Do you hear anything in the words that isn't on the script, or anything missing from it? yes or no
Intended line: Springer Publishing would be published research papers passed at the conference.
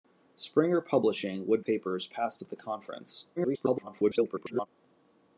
yes